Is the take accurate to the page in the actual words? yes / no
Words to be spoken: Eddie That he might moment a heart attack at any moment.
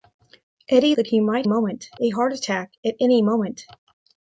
yes